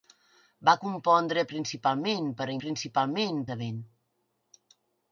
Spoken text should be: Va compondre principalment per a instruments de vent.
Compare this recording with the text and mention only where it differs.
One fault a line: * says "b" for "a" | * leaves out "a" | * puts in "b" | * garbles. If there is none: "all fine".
* says "principalment" for "instruments"